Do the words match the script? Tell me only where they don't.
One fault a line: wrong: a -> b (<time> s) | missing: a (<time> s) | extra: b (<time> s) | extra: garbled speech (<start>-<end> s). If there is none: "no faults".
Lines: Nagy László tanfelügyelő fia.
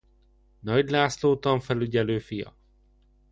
no faults